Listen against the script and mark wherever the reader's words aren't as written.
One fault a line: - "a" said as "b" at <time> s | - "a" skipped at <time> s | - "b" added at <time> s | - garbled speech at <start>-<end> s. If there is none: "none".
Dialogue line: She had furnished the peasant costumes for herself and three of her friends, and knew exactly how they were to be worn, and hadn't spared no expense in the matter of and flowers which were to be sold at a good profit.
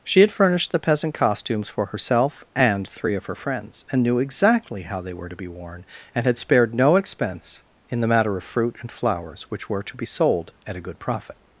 - "hadn't" said as "had" at 6.2 s
- "fruit" added at 8.4 s